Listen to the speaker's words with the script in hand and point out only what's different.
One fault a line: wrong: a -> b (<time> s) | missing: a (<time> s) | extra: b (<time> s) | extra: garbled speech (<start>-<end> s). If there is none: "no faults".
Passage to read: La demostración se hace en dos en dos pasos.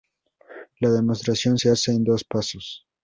missing: en dos (2.2 s)